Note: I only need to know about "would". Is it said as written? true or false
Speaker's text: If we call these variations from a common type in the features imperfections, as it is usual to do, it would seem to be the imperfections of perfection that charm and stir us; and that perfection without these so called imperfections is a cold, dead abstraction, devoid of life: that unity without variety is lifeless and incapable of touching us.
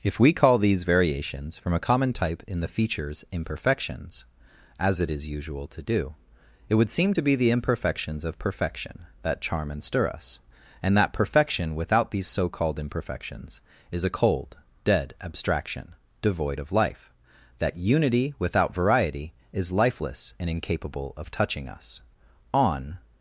true